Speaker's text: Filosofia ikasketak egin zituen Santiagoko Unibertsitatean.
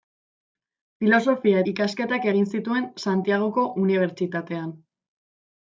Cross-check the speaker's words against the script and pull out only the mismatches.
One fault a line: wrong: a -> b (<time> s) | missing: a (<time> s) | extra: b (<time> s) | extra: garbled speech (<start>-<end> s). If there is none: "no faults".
no faults